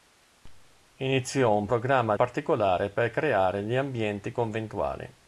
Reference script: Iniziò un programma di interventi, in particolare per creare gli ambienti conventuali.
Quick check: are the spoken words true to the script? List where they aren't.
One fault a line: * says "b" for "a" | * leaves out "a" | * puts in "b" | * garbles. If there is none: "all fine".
* leaves out "di interventi in"